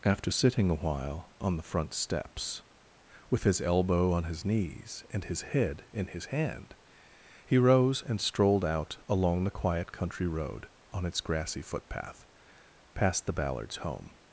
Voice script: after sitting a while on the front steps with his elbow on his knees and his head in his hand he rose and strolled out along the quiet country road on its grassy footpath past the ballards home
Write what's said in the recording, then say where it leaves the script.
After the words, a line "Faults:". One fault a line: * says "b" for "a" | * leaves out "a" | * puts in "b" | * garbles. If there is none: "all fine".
after sitting a while on the front steps with his elbow on his knees and his head in his hand he rose and strolled out along the quiet country road on its grassy footpath past the ballards home
Faults:
all fine